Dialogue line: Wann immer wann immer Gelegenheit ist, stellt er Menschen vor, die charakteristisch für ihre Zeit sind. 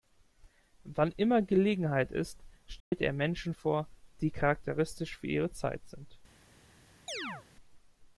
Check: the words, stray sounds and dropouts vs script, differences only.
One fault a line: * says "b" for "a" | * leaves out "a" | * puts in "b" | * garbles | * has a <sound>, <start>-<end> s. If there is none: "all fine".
* leaves out "wann immer"
* has a dropout, 2.8-2.9 s
* has a chirp, 7.1-7.5 s